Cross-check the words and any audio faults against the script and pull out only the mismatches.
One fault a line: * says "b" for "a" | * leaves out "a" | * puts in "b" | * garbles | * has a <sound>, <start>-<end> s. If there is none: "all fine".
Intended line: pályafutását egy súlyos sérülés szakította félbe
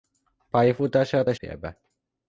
* leaves out "súlyos sérülés szakította"